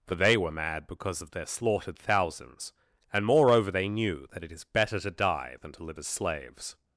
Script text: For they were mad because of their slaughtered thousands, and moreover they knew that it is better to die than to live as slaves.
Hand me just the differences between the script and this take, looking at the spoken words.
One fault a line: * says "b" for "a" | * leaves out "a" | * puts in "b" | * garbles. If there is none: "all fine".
all fine